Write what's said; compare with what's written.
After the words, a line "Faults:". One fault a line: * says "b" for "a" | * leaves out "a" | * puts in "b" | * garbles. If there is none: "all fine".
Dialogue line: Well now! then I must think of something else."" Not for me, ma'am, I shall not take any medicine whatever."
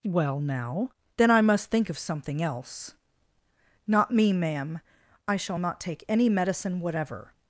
Well now! then I must think of something else."" Not me, ma'am, I shall not take any medicine whatever."
Faults:
* leaves out "for"